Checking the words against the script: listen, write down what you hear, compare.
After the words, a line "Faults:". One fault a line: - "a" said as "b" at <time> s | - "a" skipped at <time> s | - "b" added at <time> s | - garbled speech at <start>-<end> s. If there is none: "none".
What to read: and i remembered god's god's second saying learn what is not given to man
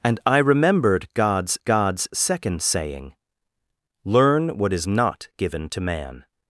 and i remembered god's god's second saying learn what is not given to man
Faults:
none